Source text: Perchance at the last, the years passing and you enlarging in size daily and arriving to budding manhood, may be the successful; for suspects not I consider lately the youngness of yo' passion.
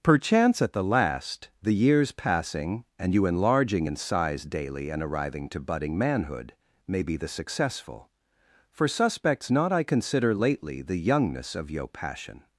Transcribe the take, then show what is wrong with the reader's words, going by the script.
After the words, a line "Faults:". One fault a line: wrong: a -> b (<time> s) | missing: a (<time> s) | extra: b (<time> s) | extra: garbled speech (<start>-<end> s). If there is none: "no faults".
Perchance at the last, the years passing and you enlarging in size daily and arriving to budding manhood, may be the successful; for suspects not I consider lately the youngness of yo' passion.
Faults:
no faults